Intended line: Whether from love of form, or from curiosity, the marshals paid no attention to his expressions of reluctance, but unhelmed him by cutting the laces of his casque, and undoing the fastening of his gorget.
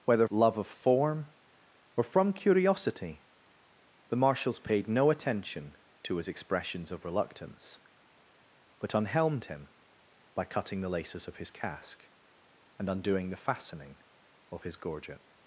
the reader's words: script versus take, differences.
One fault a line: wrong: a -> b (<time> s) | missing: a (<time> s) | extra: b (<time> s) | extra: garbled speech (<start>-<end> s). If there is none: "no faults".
missing: from (0.3 s)